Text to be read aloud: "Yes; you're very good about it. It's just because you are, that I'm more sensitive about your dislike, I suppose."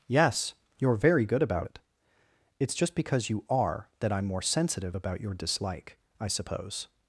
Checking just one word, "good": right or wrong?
right